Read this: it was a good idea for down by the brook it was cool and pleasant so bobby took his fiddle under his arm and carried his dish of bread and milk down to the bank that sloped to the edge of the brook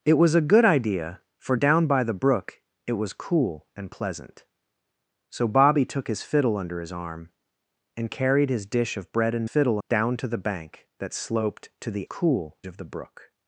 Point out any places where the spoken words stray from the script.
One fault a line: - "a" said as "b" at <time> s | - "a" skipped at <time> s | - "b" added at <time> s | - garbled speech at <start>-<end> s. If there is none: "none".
- "milk" said as "fiddle" at 9.4 s
- "edge" said as "cool" at 12.0 s